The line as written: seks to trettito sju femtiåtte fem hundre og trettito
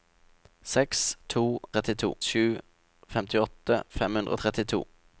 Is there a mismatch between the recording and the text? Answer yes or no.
no